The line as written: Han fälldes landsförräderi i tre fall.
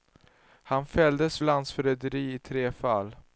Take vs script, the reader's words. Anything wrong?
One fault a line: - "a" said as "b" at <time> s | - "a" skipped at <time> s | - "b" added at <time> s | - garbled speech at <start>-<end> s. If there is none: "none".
none